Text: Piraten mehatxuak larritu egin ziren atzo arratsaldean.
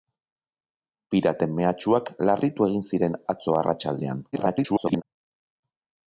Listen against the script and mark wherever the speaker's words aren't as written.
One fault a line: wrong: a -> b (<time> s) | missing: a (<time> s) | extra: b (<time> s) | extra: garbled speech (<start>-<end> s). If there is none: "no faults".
extra: garbled speech (4.3-5.0 s)